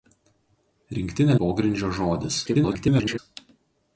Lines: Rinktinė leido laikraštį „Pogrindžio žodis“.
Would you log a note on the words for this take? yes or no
yes